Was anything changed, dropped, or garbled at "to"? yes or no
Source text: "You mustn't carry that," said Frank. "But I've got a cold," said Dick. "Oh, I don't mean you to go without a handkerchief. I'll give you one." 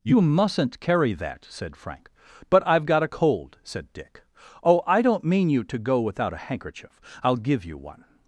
no